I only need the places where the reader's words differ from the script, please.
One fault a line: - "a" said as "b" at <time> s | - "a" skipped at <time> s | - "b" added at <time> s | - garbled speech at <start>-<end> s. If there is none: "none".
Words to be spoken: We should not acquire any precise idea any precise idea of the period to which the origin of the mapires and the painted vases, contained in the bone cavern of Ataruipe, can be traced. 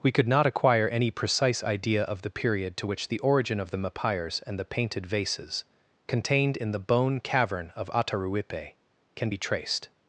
- "should" said as "could" at 0.1 s
- "any precise idea" skipped at 2.0 s